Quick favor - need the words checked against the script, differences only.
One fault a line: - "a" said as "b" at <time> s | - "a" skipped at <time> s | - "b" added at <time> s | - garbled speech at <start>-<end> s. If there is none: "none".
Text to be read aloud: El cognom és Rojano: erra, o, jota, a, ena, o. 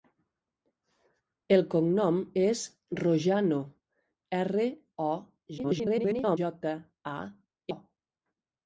- garbled speech at 5.6-6.4 s
- "ena" skipped at 7.2 s